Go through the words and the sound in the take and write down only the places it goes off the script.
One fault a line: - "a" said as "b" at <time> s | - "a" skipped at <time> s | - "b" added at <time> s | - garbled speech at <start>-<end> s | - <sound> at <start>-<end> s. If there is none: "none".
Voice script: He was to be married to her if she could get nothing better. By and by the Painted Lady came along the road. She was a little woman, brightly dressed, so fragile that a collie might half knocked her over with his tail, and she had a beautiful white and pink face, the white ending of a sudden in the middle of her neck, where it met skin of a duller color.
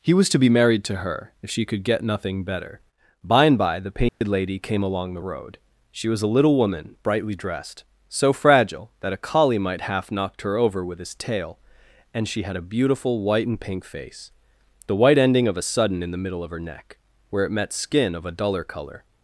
- dropout at 4.1-4.2 s